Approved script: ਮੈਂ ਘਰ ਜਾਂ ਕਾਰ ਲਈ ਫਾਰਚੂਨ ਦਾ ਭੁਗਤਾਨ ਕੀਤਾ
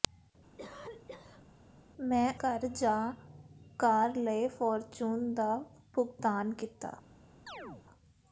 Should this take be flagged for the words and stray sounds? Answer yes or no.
yes